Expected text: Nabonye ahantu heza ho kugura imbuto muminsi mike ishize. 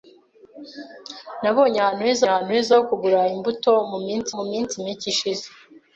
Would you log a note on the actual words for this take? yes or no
yes